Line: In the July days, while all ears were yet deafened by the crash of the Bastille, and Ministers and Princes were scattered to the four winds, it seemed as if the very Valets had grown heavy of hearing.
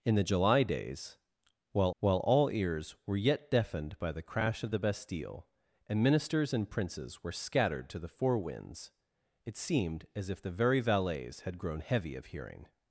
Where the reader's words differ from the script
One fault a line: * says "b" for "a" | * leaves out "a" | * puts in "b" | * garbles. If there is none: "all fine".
* puts in "while"